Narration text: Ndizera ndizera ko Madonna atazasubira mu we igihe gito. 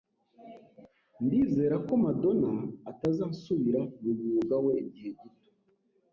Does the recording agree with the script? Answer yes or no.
no